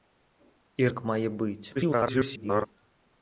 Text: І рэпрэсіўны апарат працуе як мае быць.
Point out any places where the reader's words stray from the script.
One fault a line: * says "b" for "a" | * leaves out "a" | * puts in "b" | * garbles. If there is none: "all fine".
* leaves out "рэпрэсіўны апарат працуе"
* garbles